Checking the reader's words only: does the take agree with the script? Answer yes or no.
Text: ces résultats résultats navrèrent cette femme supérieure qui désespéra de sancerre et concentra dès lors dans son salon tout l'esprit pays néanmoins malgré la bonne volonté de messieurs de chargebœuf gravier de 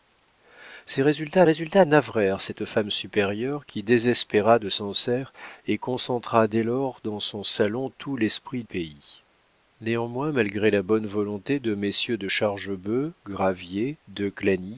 yes